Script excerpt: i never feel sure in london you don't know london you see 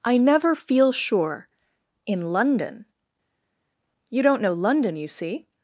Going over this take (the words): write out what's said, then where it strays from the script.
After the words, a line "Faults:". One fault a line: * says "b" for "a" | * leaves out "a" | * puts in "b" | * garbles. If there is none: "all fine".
i never feel sure in london you don't know london you see
Faults:
all fine